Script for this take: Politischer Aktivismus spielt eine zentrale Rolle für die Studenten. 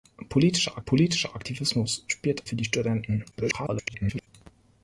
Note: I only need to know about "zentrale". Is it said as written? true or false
false